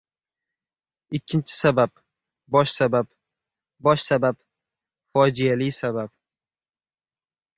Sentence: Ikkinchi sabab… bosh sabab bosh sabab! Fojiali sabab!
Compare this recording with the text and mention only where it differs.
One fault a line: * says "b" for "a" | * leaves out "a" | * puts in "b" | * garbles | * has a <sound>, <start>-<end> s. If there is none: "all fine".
all fine